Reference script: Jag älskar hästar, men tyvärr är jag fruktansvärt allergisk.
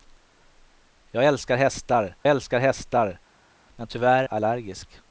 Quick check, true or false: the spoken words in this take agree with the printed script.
false